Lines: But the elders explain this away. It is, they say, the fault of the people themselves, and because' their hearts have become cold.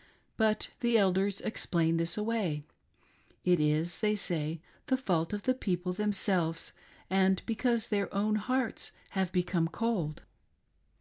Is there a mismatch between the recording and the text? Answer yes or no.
yes